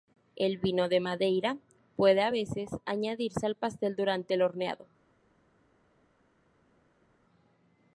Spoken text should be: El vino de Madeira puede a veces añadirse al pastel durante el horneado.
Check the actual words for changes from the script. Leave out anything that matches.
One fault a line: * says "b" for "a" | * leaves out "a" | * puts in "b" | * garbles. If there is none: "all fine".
all fine